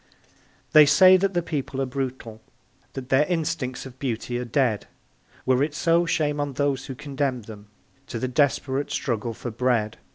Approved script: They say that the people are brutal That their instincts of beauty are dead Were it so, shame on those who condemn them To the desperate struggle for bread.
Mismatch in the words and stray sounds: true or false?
false